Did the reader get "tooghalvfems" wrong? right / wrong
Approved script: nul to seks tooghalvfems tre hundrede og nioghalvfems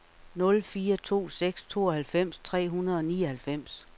right